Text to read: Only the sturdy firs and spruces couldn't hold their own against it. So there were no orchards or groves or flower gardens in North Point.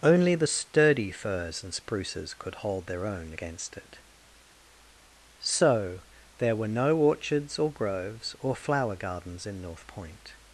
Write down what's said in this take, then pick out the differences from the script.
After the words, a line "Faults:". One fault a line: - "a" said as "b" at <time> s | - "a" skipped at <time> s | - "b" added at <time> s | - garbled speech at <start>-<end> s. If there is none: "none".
Only the sturdy firs and spruces could hold their own against it. So there were no orchards or groves or flower gardens in North Point.
Faults:
- "couldn't" said as "could" at 2.3 s